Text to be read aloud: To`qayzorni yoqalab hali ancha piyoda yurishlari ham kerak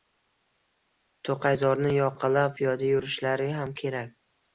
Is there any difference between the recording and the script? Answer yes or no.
yes